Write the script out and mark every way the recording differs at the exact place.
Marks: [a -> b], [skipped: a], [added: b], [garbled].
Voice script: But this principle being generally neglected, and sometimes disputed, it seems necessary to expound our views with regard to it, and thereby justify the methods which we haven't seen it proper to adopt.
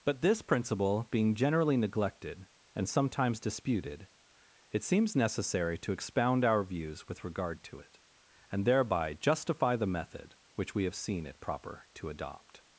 But this principle being generally neglected, and sometimes disputed, it seems necessary to expound our views with regard to it, and thereby justify the [methods -> method] which we [haven't -> have] seen it proper to adopt.